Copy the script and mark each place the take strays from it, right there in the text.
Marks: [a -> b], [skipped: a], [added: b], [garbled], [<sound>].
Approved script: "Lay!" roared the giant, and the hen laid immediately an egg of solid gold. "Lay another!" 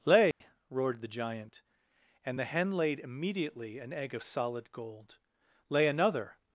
"Lay!" [dropout] roared the giant, and the hen laid immediately an egg of solid gold. "Lay another!"